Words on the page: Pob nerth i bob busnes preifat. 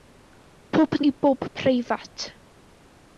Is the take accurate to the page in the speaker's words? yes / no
no